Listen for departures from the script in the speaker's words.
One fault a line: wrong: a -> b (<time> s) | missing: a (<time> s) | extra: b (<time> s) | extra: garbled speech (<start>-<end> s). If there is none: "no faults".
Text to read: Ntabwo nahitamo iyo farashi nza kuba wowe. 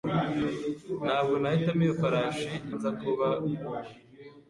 no faults